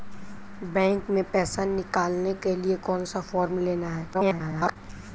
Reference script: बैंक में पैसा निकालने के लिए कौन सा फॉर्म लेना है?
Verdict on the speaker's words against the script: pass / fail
fail